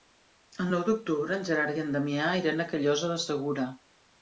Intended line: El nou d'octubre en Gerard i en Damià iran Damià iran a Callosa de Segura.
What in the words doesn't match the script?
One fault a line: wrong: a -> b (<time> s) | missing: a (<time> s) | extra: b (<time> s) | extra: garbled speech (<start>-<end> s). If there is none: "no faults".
missing: Damià iran (2.7 s)